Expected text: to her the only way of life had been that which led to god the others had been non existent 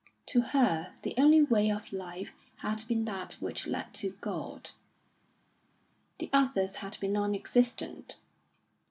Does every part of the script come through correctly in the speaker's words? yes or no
yes